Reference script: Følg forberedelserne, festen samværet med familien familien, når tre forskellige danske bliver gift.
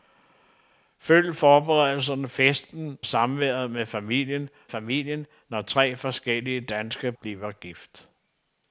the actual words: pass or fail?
pass